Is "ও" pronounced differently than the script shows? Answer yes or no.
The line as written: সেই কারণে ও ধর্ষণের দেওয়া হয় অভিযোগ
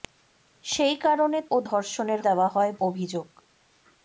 no